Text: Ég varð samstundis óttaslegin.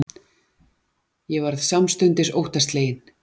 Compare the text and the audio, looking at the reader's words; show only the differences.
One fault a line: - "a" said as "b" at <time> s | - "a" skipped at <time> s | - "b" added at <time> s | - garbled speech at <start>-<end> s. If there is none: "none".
none